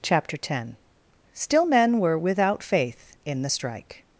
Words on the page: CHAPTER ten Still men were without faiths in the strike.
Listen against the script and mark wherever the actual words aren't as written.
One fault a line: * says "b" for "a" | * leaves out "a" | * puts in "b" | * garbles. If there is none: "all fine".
* says "faith" for "faiths"